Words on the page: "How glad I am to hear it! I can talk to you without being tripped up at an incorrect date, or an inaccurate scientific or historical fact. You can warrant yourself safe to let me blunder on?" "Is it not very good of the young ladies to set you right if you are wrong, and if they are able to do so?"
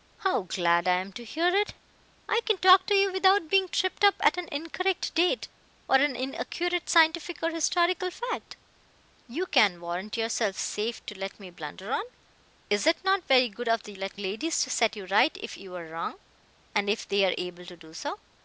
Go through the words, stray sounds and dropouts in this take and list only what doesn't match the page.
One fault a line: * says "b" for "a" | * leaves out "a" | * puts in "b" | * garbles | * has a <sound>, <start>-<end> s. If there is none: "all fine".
* says "let" for "young"